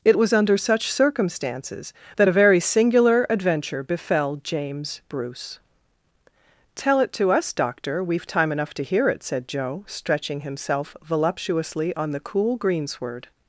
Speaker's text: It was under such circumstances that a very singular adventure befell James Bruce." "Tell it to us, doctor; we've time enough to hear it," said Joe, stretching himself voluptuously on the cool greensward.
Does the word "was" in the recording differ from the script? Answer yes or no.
no